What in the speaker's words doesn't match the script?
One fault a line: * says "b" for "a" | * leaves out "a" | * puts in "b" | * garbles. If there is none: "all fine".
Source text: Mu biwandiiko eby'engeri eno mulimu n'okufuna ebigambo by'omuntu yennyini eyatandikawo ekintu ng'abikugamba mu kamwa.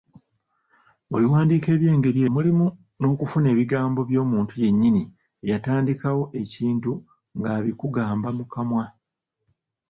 * leaves out "eno"